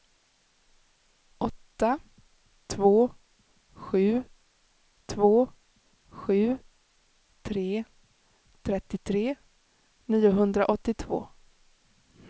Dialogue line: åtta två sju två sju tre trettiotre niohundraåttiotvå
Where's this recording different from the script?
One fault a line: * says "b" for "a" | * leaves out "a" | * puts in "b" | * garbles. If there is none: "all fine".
all fine